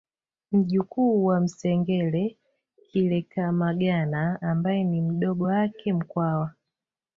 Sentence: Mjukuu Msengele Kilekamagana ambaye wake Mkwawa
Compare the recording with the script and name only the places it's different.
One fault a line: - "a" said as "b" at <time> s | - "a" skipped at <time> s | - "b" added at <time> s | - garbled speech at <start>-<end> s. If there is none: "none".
- "wa" added at 1.2 s
- "ni mdogo" added at 4.8 s